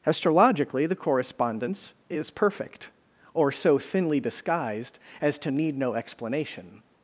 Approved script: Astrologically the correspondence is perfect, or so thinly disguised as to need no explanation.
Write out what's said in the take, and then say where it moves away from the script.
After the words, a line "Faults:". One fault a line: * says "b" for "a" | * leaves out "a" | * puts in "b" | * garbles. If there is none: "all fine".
Astrologically the correspondence is perfect, or so thinly disguised as to need no explanation.
Faults:
all fine